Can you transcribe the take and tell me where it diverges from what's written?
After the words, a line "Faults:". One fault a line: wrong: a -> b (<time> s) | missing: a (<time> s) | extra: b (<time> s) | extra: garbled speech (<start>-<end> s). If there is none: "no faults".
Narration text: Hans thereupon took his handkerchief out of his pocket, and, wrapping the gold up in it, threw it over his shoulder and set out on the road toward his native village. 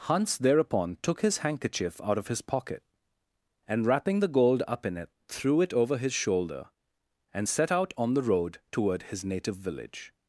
Hans thereupon took his handkerchief out of his pocket, and, wrapping the gold up in it, threw it over his shoulder and set out on the road toward his native village.
Faults:
no faults